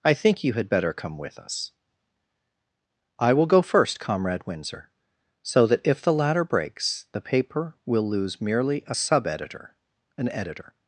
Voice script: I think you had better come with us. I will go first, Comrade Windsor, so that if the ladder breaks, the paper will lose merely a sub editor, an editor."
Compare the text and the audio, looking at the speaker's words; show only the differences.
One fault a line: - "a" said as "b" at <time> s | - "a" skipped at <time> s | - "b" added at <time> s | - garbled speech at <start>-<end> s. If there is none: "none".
none